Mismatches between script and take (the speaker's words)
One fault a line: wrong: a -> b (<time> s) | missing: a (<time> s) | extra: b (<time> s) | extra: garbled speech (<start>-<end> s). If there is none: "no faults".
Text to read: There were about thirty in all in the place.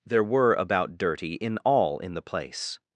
wrong: thirty -> dirty (1.0 s)